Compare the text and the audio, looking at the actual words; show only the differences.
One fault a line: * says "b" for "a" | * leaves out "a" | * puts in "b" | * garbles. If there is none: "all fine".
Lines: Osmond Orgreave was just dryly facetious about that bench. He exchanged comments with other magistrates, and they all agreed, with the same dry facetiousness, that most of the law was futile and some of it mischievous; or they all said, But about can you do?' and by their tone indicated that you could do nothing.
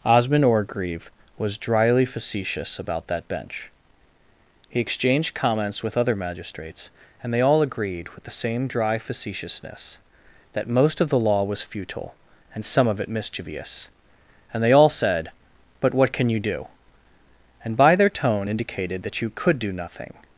* leaves out "just"
* says "and" for "or"
* says "what" for "about"